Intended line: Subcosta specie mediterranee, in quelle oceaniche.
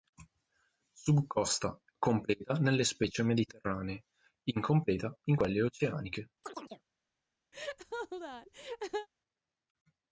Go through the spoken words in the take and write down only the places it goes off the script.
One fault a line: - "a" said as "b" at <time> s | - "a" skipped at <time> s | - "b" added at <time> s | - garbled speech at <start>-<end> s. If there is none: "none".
- "completa nelle" added at 2.0 s
- "incompleta" added at 4.5 s